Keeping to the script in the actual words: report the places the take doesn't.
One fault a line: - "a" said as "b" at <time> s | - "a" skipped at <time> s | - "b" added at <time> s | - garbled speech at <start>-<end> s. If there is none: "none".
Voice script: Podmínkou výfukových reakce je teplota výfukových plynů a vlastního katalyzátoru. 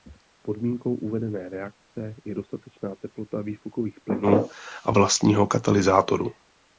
- "výfukových" said as "uvedené" at 0.9 s
- "dostatečná" added at 2.3 s